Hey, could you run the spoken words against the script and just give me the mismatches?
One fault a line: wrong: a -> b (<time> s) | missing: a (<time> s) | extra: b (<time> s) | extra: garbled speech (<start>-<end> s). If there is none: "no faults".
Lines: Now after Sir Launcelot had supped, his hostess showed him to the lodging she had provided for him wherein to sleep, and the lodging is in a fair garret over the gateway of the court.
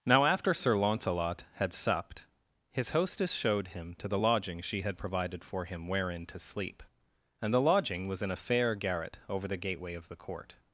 wrong: is -> was (8.1 s)